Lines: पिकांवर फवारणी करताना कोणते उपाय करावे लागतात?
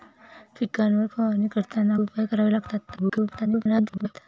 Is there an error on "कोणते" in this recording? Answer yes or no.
yes